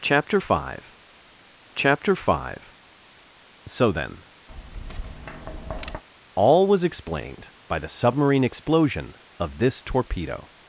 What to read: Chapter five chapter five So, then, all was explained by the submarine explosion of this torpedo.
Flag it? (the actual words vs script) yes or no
no